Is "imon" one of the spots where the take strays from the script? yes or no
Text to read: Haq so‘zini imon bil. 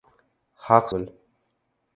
yes